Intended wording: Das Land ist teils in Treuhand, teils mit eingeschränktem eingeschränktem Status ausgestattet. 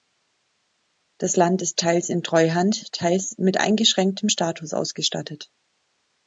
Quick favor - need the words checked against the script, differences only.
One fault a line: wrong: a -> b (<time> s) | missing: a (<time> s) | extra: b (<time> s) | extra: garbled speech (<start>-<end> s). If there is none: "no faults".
missing: eingeschränktem (4.3 s)